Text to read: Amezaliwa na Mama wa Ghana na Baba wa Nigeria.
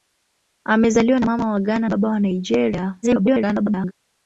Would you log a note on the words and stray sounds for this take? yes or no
yes